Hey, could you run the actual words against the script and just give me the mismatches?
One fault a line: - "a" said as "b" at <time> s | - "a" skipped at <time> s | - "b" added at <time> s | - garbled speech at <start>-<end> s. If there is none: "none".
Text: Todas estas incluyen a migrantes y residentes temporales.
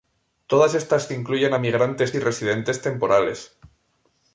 none